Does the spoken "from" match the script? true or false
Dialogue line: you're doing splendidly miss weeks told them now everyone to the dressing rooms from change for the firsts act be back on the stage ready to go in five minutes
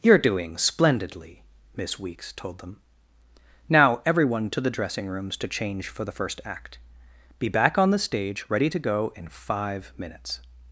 false